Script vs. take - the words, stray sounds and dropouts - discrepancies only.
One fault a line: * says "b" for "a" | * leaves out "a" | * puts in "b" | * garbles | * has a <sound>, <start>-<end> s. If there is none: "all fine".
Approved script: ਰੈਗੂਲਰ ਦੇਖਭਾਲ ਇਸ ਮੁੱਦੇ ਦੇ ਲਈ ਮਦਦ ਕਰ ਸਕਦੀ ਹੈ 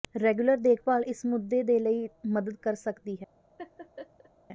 * has a laugh, 3.6-4.3 s